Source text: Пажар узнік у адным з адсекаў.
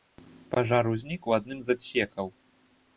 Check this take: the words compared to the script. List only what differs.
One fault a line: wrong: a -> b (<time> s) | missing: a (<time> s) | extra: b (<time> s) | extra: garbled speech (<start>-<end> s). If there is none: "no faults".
no faults